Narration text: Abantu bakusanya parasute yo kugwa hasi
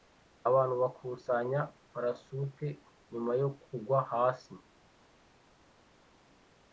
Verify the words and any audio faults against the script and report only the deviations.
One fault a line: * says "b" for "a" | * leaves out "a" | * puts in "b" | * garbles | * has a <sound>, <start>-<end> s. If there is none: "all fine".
* puts in "nyuma"